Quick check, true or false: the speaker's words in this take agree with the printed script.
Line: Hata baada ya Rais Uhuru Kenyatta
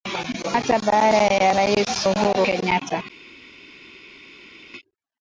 true